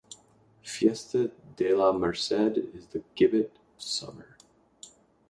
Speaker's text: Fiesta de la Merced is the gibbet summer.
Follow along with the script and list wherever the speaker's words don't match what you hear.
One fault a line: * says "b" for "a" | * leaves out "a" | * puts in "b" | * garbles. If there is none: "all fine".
all fine